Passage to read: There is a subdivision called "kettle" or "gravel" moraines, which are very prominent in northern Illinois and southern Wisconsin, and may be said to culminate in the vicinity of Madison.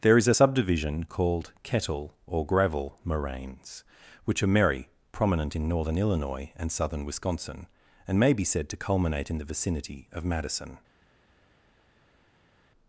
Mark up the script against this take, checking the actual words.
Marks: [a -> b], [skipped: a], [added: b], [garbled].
There is a subdivision called "kettle" or "gravel" moraines, which are [very -> merry] prominent in northern Illinois and southern Wisconsin, and may be said to culminate in the vicinity of Madison.